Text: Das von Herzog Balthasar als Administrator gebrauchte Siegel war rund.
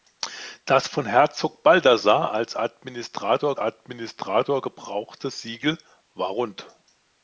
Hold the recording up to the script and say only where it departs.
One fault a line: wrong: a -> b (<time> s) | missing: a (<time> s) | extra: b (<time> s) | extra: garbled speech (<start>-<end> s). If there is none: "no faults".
extra: Administrator (3.6 s)